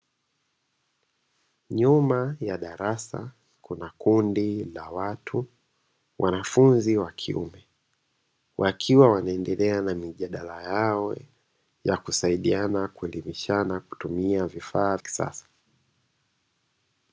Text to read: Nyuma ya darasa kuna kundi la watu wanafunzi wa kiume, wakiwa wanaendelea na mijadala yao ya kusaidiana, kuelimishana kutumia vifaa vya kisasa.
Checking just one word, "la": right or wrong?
right